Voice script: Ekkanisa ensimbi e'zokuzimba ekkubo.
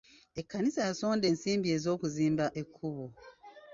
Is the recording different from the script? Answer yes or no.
yes